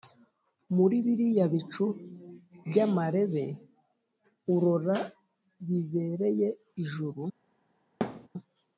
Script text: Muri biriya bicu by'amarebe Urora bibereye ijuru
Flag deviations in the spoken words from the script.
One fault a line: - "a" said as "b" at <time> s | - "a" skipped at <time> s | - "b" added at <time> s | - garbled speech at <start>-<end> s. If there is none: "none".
none